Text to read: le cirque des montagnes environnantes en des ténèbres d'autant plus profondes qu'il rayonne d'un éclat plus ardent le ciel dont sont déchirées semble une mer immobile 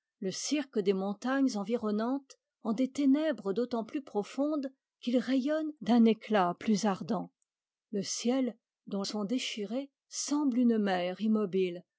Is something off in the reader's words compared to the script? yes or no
no